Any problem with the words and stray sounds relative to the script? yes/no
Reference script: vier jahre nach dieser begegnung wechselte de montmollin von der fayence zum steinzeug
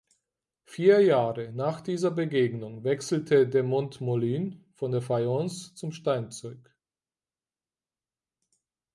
no